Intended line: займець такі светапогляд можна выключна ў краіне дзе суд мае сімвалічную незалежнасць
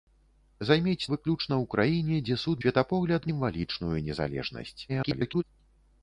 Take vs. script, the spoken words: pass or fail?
fail